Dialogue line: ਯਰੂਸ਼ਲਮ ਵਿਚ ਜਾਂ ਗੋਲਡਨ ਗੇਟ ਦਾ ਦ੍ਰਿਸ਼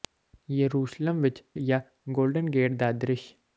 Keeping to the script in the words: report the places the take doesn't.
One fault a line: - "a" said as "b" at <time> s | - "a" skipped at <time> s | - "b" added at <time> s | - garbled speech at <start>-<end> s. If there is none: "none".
none